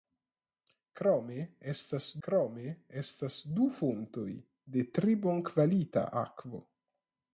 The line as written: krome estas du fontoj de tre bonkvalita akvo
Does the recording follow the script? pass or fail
fail